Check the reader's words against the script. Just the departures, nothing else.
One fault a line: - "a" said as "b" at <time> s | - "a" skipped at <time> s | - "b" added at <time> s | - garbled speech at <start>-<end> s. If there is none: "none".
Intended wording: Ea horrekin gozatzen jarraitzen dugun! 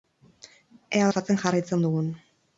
- "horrekin" skipped at 1.1 s